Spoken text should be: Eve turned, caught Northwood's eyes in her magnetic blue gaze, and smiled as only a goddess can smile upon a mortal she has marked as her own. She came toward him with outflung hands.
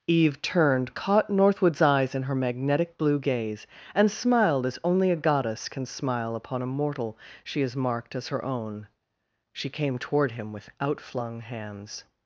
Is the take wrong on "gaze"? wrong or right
right